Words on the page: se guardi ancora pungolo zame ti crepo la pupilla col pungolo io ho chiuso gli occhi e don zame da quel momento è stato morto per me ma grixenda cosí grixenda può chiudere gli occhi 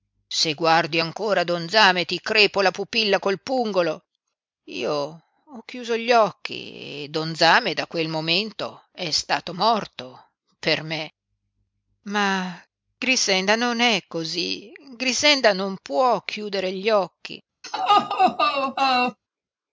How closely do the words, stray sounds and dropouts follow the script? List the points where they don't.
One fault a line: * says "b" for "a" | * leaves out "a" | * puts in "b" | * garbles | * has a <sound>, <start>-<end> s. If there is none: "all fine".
* says "don" for "pungolo"
* puts in "non è"
* puts in "non"
* has a laugh, 17.6-19.2 s